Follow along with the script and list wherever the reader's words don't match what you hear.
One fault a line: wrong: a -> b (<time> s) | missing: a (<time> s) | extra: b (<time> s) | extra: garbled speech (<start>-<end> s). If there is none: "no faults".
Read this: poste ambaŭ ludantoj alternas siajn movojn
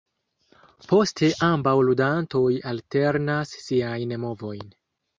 no faults